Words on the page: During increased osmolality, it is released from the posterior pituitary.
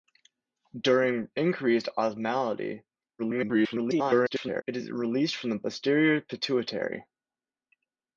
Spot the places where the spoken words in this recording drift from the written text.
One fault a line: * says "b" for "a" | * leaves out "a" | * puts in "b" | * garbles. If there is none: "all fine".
* garbles